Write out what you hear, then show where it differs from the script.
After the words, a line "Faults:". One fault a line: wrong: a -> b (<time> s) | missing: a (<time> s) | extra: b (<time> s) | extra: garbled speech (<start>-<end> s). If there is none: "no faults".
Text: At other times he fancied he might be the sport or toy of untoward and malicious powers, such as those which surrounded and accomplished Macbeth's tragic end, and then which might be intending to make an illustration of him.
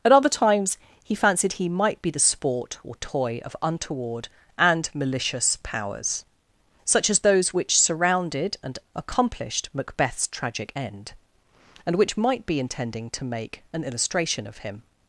At other times he fancied he might be the sport or toy of untoward and malicious powers, such as those which surrounded and accomplished Macbeth's tragic end, and which might be intending to make an illustration of him.
Faults:
missing: then (11.9 s)